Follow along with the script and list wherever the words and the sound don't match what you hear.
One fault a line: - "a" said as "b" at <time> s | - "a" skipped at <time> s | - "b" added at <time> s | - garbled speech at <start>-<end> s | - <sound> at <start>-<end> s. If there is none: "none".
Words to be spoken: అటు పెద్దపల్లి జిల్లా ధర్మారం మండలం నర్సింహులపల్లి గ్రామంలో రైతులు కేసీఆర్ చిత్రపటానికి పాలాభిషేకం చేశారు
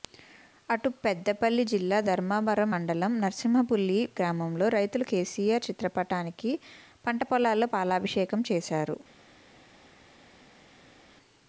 - "పంట పొలాల్లో" added at 7.1 s